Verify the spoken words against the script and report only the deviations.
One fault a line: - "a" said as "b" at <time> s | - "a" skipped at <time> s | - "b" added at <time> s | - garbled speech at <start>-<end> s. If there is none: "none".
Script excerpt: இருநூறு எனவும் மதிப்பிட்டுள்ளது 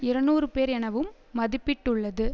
- "பேர்" added at 0.5 s